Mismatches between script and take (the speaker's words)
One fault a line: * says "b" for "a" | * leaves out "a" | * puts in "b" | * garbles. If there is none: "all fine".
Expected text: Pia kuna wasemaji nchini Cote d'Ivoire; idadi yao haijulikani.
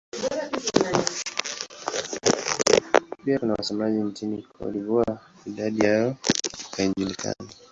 all fine